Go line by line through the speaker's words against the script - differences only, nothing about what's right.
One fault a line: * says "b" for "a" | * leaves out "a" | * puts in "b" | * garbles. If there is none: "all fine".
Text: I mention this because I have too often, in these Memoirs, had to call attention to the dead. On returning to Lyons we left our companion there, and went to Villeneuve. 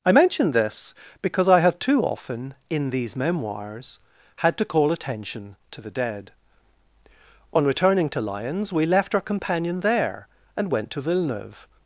all fine